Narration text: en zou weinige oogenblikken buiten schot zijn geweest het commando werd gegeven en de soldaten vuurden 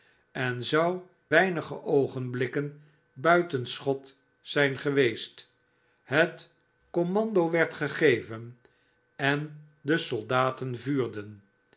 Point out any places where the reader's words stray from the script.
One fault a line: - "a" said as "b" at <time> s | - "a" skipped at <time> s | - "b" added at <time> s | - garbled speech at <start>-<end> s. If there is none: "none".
none